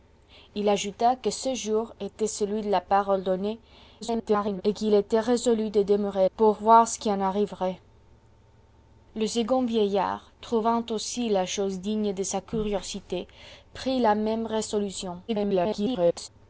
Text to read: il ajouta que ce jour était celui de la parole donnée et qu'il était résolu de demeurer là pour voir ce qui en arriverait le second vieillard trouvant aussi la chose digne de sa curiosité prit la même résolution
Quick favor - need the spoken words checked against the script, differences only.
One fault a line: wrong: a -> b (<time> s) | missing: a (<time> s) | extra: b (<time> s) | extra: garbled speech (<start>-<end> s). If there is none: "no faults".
extra: garbled speech (4.0-4.6 s)
missing: là (6.3 s)
extra: garbled speech (15.3-16.3 s)